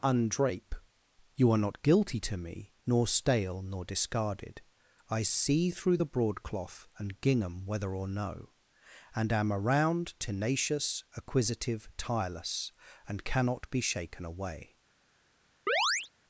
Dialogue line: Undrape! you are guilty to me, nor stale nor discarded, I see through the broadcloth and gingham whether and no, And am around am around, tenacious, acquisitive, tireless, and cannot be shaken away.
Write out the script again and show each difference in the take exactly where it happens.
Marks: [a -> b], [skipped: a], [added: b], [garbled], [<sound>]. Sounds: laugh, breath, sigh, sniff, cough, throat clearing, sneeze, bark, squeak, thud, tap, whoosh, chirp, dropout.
Undrape! you are [added: not] guilty to me, nor stale nor discarded, I see through the broadcloth and gingham whether [and -> or] no, And am around [skipped: am around,] tenacious, acquisitive, tireless, and cannot be shaken away. [chirp]